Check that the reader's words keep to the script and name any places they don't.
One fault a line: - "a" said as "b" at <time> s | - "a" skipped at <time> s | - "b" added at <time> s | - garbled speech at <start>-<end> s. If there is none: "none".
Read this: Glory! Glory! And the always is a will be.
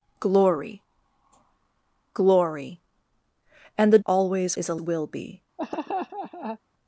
none